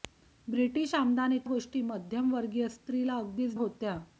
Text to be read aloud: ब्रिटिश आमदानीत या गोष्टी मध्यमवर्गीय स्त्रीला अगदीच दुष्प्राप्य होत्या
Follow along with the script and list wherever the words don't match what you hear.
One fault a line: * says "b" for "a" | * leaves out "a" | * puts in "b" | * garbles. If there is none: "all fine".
* leaves out "या"
* leaves out "दुष्प्राप्य"